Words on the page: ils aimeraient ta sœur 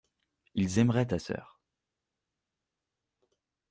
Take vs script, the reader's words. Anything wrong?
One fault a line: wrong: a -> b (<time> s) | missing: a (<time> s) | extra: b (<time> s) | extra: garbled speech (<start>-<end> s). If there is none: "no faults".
no faults